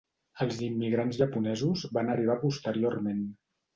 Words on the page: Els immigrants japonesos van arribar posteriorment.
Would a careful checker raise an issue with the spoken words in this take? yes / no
no